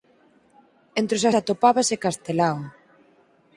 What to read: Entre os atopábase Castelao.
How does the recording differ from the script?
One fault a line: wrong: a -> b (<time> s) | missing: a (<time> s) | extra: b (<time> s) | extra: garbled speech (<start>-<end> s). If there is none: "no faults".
no faults